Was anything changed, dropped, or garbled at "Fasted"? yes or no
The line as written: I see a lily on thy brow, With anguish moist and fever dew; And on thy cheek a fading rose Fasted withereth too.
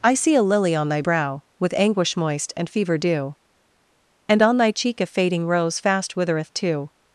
yes